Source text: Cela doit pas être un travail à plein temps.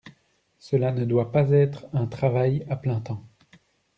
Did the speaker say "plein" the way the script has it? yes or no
yes